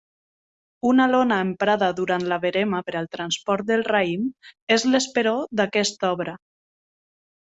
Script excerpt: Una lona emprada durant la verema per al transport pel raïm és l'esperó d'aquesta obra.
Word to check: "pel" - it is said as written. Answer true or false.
false